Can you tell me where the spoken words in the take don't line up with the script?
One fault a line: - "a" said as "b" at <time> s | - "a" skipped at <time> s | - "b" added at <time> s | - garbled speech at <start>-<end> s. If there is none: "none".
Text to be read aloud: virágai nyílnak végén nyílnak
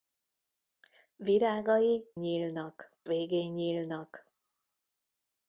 none